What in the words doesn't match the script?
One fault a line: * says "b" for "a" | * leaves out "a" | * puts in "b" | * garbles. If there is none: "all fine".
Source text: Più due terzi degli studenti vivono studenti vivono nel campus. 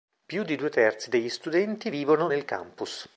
* puts in "di"
* leaves out "studenti vivono"